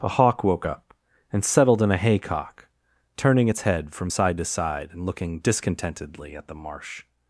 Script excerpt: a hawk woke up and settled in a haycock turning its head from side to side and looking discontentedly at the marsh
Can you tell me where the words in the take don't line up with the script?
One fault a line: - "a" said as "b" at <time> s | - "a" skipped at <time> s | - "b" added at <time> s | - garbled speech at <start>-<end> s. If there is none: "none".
none